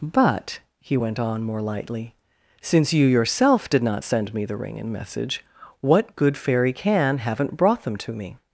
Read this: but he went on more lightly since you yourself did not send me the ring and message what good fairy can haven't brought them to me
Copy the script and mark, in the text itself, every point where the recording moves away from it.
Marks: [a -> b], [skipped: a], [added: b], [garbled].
but he went on more lightly since you yourself did not send me the ring and message what good fairy can haven't brought them to me